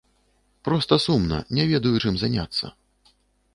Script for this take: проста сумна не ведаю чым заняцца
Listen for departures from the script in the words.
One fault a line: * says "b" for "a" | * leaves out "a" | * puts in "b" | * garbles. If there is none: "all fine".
all fine